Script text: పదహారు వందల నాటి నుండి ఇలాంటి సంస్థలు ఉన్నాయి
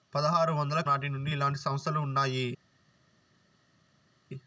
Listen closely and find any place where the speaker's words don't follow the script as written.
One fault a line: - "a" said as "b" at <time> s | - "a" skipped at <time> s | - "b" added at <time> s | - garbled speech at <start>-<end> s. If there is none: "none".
none